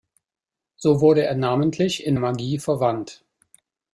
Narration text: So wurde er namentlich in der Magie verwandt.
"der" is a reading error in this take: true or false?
true